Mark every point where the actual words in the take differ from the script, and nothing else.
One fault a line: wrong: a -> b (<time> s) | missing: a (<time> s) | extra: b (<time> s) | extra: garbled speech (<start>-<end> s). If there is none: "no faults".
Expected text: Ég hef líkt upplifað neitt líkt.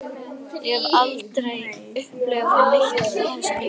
wrong: líkt -> aldrei (1.0 s)
extra: þessu (3.0 s)